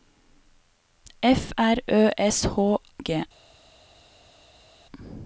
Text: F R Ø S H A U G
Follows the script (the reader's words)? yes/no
no